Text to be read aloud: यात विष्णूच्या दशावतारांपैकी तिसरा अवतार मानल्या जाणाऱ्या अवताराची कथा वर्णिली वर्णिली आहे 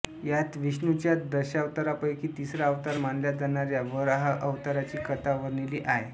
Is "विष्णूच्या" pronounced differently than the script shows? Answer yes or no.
no